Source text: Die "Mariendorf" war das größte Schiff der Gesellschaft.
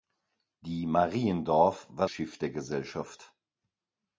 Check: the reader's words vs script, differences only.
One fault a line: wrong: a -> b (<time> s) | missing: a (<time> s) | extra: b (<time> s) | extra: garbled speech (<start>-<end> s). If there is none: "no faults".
missing: das größte (2.1 s)